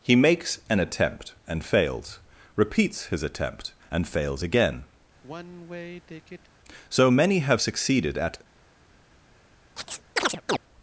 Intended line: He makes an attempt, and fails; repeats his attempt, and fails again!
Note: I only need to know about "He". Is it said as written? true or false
true